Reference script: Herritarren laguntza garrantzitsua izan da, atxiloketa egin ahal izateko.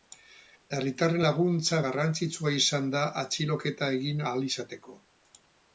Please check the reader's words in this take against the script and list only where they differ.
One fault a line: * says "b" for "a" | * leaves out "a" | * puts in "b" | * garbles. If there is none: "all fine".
all fine